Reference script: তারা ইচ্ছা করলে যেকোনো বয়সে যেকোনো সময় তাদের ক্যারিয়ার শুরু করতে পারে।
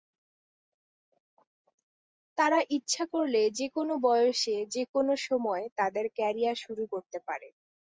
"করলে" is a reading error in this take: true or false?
false